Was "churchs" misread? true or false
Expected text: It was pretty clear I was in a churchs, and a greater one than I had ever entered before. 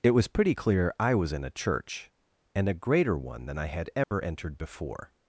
true